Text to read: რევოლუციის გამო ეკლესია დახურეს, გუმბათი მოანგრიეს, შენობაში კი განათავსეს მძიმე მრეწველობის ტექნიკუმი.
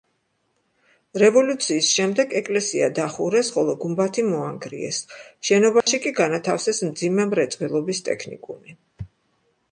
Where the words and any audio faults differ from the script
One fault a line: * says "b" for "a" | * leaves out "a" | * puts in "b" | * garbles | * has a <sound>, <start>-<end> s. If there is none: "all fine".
* says "შემდეგ" for "გამო"
* puts in "ხოლო"
* has a dropout, 5.8-5.9 s